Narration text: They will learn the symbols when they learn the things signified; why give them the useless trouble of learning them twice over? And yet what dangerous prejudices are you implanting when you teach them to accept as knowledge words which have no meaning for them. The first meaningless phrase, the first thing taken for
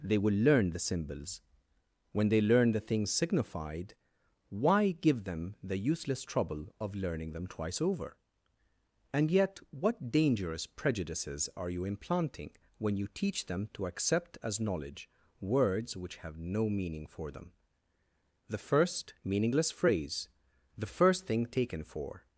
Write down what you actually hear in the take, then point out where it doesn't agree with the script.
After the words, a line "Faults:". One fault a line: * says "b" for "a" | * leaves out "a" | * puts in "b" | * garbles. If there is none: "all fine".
They will learn the symbols when they learn the things signified; why give them the useless trouble of learning them twice over? And yet what dangerous prejudices are you implanting when you teach them to accept as knowledge words which have no meaning for them. The first meaningless phrase, the first thing taken for
Faults:
all fine